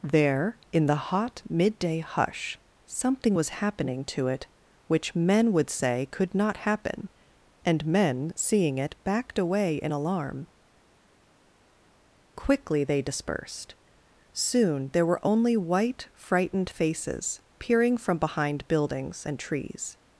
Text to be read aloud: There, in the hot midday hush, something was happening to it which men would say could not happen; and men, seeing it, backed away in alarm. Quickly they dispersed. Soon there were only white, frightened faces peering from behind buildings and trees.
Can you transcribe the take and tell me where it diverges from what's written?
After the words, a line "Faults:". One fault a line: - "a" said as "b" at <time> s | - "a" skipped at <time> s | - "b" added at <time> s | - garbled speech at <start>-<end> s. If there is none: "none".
There, in the hot midday hush, something was happening to it which men would say could not happen; and men, seeing it, backed away in alarm. Quickly they dispersed. Soon there were only white, frightened faces peering from behind buildings and trees.
Faults:
none